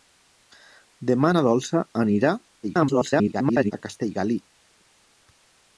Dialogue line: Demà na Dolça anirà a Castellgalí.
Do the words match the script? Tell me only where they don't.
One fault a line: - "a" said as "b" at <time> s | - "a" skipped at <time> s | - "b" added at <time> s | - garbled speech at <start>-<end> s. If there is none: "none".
- garbled speech at 2.6-3.7 s